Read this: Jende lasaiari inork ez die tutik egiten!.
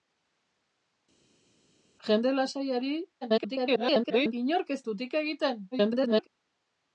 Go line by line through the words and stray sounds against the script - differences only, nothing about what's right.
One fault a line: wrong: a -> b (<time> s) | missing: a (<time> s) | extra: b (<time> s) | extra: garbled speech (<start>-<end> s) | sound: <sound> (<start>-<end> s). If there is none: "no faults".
extra: garbled speech (3.2-4.3 s)
missing: die (4.8 s)
extra: garbled speech (5.7-6.3 s)